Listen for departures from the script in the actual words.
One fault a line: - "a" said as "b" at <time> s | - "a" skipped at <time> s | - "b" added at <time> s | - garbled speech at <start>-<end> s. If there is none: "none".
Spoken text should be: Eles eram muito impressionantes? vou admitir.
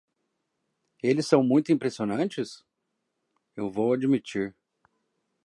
- "eram" said as "são" at 1.3 s
- "eu" added at 3.5 s